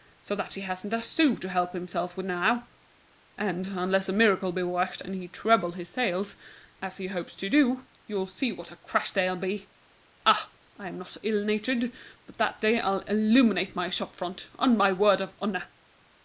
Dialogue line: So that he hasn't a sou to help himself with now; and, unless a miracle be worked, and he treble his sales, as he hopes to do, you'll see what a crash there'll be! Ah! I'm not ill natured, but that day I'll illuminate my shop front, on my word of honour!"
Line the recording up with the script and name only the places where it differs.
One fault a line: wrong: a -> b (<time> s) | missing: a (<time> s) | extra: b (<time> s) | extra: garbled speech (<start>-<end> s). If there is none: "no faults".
no faults